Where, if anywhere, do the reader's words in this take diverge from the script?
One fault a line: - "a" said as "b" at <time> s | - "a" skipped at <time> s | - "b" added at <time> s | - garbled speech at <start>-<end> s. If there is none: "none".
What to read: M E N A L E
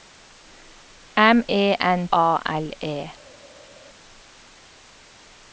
none